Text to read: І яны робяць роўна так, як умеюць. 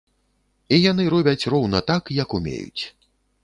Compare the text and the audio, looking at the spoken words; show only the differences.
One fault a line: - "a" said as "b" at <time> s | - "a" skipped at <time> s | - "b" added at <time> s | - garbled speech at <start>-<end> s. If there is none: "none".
none